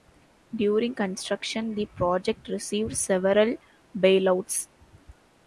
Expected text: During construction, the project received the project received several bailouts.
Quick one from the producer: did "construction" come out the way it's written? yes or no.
yes